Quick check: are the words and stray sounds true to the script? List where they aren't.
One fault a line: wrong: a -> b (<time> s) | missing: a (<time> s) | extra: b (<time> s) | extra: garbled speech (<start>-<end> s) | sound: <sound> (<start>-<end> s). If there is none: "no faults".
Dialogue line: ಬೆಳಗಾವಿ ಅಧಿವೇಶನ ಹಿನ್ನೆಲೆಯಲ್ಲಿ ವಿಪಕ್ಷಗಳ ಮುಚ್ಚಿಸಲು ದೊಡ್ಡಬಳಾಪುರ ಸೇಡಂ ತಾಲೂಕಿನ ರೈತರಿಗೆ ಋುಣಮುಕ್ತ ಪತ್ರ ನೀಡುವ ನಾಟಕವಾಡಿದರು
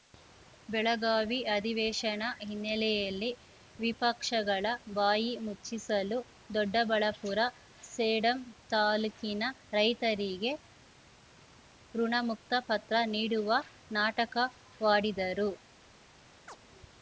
extra: ಬಾಯಿ (4.9 s)
sound: chirp (16.5-16.6 s)